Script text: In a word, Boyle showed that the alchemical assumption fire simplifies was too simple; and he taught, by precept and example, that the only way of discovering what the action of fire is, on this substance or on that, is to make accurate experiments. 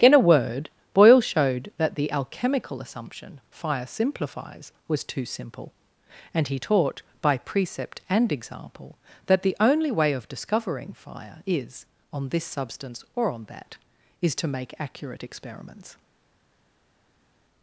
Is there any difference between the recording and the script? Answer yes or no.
yes